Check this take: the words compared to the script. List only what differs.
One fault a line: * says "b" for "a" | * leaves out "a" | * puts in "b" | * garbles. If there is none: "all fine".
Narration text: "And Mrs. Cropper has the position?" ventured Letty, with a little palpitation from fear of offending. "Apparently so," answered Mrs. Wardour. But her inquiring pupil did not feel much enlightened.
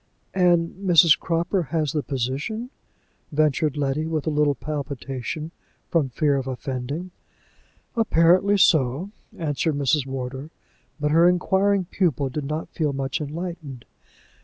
all fine